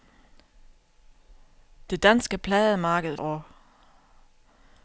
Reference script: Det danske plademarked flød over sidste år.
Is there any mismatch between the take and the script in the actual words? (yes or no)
yes